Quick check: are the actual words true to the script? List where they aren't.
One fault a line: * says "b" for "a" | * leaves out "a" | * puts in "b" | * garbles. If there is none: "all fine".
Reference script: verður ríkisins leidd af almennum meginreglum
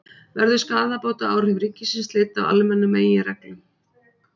* puts in "skaðabótaábyrgð"